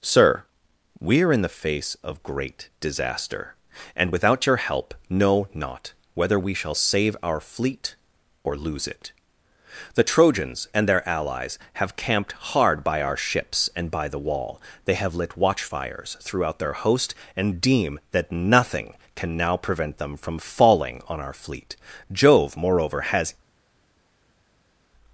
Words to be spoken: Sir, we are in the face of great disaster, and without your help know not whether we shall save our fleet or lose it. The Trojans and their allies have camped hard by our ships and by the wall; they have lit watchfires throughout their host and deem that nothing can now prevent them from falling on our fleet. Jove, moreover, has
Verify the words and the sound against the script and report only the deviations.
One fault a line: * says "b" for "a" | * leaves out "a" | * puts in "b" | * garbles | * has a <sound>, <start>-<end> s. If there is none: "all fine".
all fine